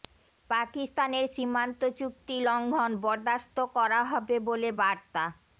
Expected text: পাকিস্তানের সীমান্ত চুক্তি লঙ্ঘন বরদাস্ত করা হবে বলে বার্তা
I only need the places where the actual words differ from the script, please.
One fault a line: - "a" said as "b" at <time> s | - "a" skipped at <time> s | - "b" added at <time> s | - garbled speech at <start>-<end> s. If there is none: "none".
none